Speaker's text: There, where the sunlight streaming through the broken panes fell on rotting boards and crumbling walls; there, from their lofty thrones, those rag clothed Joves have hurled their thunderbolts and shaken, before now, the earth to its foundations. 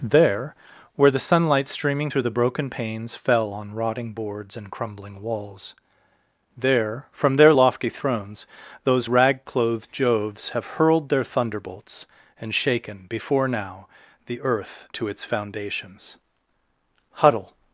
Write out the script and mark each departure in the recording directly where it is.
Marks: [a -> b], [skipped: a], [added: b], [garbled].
There, where the sunlight streaming through the broken panes fell on rotting boards and crumbling walls; there, from their lofty thrones, those rag clothed Joves have hurled their thunderbolts and shaken, before now, the earth to its foundations. [added: Huddle]